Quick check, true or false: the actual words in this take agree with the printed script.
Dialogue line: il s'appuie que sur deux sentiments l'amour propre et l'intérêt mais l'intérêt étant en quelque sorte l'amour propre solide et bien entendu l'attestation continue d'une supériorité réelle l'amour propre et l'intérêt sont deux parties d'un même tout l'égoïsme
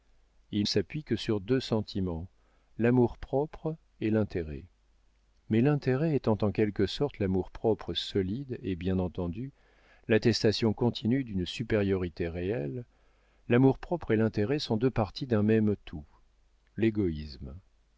true